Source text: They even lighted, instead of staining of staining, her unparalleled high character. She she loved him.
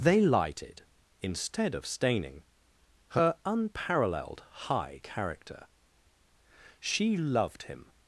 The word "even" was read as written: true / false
false